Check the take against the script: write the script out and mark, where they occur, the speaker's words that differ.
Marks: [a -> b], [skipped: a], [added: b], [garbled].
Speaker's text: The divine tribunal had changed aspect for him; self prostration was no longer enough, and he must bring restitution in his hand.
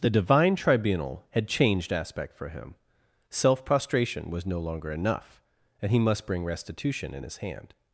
The divine tribunal had changed aspect for him; self prostration was no longer enough, and he must bring restitution in his hand.